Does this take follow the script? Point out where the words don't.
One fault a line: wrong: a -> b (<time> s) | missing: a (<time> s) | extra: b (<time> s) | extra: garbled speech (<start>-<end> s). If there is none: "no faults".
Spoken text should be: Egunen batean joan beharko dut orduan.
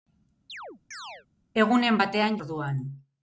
missing: joan beharko dut (2.4 s)